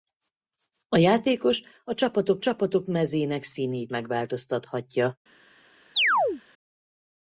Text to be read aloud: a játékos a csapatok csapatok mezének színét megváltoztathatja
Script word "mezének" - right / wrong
right